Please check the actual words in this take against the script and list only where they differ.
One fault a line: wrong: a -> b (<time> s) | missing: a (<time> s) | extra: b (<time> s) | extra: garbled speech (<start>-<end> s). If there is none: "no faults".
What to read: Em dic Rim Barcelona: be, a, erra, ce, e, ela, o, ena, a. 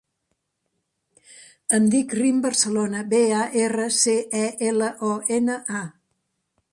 no faults